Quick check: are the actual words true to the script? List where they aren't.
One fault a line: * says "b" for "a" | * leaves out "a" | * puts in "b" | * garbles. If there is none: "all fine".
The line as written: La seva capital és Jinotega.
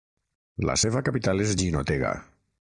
all fine